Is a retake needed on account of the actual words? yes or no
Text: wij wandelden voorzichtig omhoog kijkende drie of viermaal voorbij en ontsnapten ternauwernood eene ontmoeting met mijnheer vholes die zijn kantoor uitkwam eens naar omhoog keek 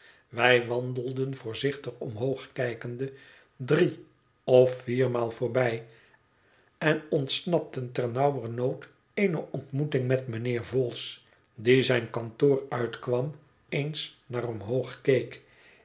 no